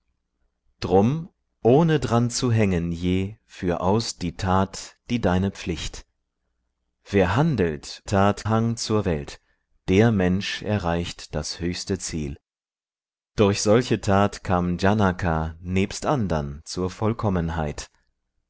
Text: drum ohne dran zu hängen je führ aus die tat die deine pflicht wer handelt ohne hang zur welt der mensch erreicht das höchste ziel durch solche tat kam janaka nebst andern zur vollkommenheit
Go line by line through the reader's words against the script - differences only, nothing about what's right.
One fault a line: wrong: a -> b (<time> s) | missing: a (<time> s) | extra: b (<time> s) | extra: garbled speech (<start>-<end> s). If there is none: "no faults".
wrong: ohne -> tat (8.1 s)